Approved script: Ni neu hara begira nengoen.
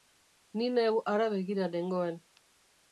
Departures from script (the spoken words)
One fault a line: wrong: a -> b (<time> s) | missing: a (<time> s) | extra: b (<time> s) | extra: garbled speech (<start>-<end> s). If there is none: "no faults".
no faults